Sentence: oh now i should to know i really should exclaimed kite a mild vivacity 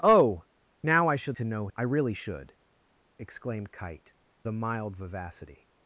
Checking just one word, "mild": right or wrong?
right